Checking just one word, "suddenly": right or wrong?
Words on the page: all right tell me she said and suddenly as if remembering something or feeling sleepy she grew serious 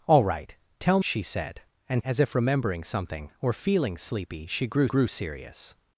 wrong